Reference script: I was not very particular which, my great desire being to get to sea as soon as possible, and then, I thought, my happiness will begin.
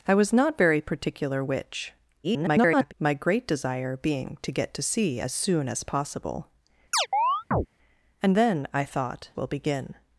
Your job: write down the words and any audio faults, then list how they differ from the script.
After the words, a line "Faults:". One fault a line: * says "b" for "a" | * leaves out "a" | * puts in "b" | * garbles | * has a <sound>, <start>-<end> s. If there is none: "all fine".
I was not very particular which, [garbled] my great desire being to get to sea as soon as possible, and then, I thought, will begin.
Faults:
* garbles
* has a chirp, 6.9-7.7 s
* leaves out "my happiness"